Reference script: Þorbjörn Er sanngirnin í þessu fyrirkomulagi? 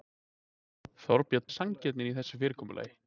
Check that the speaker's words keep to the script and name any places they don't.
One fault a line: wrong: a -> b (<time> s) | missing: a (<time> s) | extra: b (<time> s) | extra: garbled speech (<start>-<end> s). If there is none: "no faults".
no faults